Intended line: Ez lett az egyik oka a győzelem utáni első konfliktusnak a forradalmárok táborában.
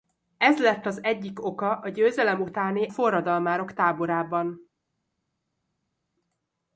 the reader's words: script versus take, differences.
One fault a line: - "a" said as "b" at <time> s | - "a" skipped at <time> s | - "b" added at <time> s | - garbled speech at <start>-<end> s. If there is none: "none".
- "első konfliktusnak a" skipped at 2.9 s